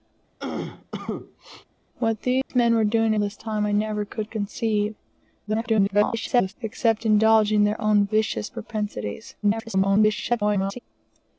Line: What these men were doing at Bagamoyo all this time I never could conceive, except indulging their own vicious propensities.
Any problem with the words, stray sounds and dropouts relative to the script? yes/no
yes